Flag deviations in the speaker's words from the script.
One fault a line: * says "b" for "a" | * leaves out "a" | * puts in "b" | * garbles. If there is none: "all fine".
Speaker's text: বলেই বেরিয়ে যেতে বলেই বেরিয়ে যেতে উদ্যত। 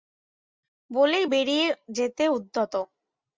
* leaves out "বলেই বেরিয়ে যেতে"